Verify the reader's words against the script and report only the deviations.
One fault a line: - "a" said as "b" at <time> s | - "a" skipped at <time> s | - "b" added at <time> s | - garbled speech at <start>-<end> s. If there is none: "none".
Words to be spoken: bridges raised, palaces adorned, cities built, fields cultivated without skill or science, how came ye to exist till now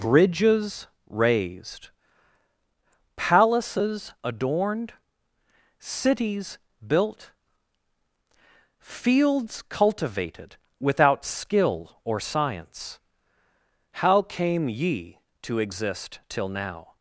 none